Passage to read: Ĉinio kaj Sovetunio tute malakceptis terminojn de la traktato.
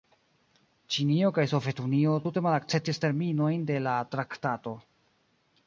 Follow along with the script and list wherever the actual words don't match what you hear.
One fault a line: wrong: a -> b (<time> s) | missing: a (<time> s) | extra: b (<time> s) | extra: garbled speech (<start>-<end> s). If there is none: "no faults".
no faults